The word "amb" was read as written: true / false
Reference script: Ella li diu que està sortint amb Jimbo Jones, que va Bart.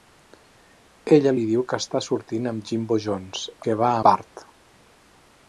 true